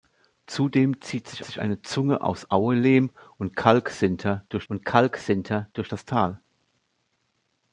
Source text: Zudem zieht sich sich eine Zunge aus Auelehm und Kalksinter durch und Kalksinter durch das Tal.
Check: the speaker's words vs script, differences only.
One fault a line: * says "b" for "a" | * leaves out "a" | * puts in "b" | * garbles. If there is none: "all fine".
all fine